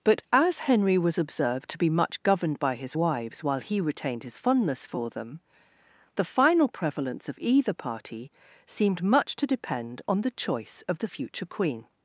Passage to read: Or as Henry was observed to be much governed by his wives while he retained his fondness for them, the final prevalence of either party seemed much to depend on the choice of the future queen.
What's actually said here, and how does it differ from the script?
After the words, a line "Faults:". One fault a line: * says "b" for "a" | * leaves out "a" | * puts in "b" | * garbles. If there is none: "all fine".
But as Henry was observed to be much governed by his wives while he retained his fondness for them, the final prevalence of either party seemed much to depend on the choice of the future queen.
Faults:
* says "But" for "Or"